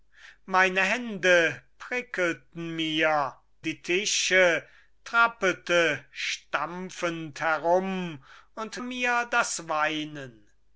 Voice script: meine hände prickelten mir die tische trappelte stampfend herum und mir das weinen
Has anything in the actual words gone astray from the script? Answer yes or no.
no